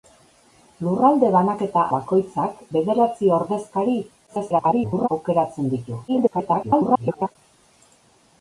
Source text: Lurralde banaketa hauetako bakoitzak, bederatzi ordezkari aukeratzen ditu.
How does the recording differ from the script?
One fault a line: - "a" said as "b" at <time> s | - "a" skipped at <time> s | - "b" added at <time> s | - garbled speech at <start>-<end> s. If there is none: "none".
- "hauetako" skipped at 1.8 s
- garbled speech at 4.3-5.1 s
- garbled speech at 6.1-7.4 s